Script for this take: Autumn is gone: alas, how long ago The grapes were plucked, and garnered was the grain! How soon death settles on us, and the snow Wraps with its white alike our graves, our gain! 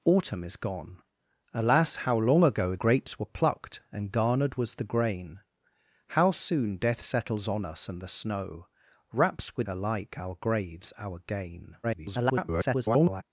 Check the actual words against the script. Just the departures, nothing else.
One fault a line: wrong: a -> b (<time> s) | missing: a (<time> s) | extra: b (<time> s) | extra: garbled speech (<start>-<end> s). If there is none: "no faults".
missing: The (2.8 s)
missing: its white (9.7 s)
extra: garbled speech (11.8-13.2 s)